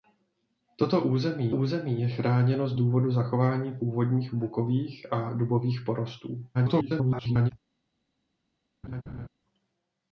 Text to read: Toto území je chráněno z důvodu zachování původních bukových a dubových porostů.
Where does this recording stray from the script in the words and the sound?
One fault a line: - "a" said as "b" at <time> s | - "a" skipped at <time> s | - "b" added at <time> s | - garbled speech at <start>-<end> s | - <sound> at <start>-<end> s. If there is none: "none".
- "území" added at 1.5 s
- garbled speech at 6.5-7.5 s
- laugh at 8.8-9.3 s